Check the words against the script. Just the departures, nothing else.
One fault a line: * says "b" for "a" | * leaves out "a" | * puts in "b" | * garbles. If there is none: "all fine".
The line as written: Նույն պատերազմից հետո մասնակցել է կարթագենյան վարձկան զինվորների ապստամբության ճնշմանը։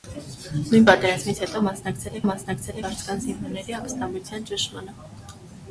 * says "մասնակցել" for "կարթագենյան"